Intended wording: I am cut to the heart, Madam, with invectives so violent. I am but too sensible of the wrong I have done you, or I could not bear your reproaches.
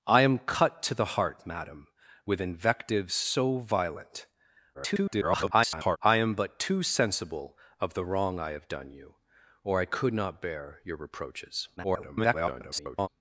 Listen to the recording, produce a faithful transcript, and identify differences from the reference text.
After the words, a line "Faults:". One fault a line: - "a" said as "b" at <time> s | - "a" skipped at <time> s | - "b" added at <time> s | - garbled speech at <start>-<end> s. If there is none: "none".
I am cut to the heart, Madam, with invectives so violent. [garbled] I am but too sensible of the wrong I have done you, or I could not bear your reproaches. [garbled]
Faults:
- garbled speech at 4.7-6.0 s
- garbled speech at 11.8-13.1 s